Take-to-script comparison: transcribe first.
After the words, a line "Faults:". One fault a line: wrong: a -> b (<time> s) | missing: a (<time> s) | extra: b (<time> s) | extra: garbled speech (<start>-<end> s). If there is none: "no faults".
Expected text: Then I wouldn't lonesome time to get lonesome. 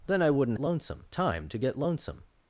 Then I wouldn't lonesome time to get lonesome.
Faults:
no faults